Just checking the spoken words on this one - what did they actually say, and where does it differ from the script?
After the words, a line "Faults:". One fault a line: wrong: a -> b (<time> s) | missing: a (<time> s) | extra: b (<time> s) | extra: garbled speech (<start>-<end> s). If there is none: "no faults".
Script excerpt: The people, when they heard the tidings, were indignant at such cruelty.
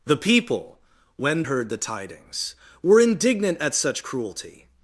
The people, when heard the tidings, were indignant at such cruelty.
Faults:
missing: they (1.4 s)